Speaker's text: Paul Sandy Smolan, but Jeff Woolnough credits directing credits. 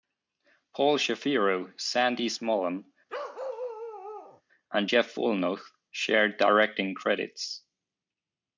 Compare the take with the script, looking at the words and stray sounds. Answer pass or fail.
fail